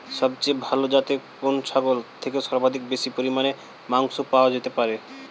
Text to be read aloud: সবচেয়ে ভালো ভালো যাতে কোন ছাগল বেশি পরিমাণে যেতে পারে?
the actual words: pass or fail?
fail